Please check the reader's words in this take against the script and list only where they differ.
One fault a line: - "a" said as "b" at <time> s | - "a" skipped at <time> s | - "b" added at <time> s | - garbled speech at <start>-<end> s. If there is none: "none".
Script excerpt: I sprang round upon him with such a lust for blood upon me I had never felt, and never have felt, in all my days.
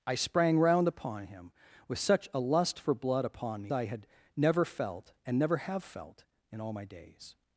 none